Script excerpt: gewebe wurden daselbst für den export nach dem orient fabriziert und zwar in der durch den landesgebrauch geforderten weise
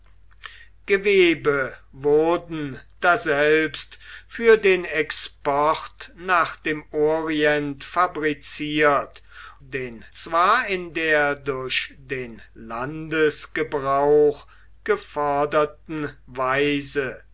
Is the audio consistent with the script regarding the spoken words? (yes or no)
no